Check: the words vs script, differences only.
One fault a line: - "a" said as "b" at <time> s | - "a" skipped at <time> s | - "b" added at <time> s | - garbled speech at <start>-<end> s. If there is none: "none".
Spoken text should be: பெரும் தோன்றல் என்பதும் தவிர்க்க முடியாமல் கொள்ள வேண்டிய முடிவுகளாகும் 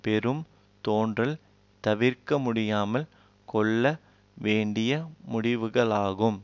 - "என்பதும்" skipped at 1.4 s